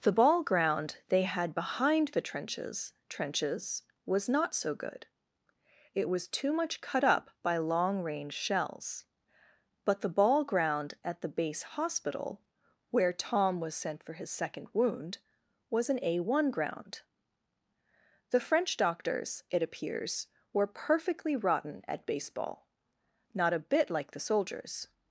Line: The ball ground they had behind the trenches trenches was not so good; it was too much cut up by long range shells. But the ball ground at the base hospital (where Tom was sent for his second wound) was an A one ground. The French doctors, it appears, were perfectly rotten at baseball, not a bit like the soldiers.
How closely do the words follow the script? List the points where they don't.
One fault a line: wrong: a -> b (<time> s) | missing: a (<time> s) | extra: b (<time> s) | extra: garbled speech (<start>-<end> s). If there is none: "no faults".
no faults